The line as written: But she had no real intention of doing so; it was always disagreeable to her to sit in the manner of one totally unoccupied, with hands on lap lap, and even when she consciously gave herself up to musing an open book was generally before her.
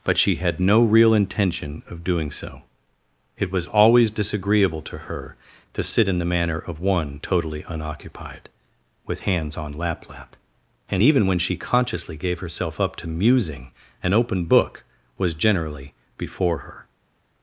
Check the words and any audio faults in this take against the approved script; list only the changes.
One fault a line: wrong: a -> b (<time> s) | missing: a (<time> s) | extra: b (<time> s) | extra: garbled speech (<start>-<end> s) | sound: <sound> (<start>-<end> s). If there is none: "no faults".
no faults